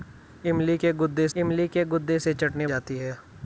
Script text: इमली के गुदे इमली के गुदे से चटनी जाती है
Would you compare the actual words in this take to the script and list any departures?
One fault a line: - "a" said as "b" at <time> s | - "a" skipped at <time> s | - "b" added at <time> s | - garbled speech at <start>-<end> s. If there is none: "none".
none